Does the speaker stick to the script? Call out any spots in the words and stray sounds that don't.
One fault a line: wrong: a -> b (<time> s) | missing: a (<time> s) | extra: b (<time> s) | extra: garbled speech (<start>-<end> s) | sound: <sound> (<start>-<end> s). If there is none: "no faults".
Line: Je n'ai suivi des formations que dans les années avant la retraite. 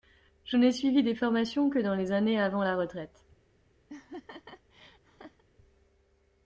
sound: laugh (3.9-5.4 s)